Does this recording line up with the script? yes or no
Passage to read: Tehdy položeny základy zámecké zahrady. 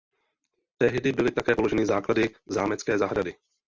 no